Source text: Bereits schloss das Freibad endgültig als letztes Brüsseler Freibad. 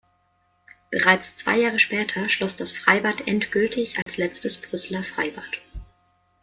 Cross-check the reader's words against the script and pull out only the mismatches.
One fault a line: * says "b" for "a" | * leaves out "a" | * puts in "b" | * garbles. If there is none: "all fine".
* puts in "zwei Jahre später"